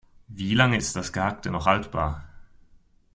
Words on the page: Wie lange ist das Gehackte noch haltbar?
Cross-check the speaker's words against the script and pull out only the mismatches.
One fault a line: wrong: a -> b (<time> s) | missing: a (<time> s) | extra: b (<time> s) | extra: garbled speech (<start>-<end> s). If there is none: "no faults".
no faults